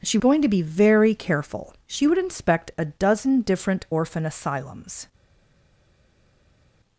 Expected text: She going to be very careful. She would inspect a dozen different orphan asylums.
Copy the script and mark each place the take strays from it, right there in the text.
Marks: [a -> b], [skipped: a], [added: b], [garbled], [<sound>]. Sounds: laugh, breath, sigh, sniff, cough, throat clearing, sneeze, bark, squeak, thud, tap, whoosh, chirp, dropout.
She going to be very careful. She would inspect a dozen different orphan asylums.